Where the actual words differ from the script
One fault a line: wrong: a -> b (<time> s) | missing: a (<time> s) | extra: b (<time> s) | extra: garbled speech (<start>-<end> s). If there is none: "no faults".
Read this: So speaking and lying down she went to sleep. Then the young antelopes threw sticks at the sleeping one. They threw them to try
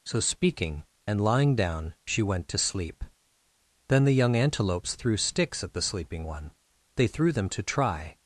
no faults